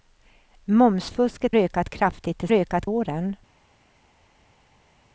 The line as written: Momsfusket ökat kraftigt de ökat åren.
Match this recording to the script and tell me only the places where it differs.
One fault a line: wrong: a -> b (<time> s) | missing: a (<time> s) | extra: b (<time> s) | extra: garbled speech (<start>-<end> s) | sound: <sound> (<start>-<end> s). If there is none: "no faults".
no faults